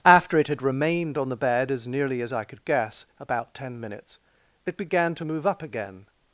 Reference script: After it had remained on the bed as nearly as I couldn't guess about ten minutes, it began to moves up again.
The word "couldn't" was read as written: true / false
false